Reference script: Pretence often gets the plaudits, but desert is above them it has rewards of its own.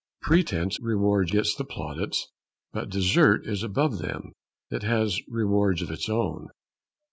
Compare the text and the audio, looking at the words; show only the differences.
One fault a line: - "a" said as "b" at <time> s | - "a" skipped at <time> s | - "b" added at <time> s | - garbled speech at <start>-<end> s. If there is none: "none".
- "often" said as "rewards" at 0.8 s